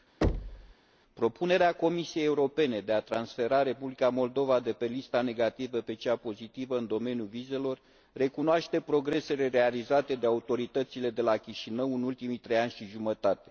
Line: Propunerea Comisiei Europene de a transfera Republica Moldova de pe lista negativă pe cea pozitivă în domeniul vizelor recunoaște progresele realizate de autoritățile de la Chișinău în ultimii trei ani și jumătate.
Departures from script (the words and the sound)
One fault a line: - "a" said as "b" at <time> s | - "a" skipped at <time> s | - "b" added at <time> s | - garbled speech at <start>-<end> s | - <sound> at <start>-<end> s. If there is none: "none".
- thud at 0.2-0.7 s